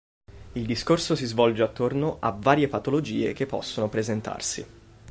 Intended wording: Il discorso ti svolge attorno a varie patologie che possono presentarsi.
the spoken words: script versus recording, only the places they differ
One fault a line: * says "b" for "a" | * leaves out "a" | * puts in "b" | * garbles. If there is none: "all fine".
* says "si" for "ti"